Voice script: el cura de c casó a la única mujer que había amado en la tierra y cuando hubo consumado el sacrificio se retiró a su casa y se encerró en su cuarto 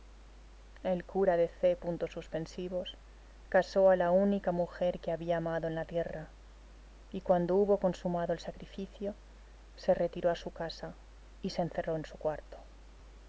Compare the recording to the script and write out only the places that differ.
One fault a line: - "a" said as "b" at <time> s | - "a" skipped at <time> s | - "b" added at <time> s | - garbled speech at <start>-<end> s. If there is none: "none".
none